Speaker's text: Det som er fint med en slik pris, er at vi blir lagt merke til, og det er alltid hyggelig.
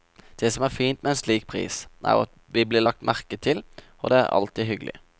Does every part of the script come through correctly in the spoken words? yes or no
yes